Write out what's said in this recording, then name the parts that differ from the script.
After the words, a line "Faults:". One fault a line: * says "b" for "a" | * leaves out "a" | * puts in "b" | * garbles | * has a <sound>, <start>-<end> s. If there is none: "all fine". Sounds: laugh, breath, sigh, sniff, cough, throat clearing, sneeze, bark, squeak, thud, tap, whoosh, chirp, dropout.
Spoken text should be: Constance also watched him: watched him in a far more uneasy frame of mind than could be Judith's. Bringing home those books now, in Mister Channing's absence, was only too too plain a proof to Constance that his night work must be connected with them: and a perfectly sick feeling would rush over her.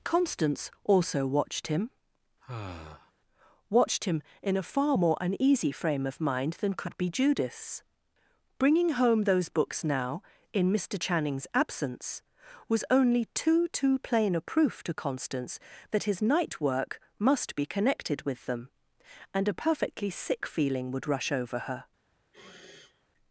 Constance also watched him: watched him in a far more uneasy frame of mind than could be Judith's. Bringing home those books now, in Mister Channing's absence, was only too too plain a proof to Constance that his night work must be connected with them: and a perfectly sick feeling would rush over her.
Faults:
* has a sigh, 2.4-3.1 s
* has a sniff, 22.3-23.1 s